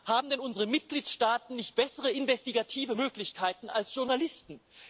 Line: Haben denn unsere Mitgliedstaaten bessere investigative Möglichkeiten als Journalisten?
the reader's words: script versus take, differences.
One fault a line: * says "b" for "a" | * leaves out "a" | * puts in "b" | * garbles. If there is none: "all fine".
* puts in "nicht"